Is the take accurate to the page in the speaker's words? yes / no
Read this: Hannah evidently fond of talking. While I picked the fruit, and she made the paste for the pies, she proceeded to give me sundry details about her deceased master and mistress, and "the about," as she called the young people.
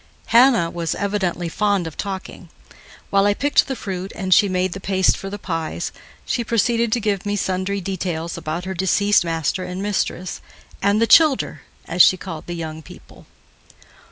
no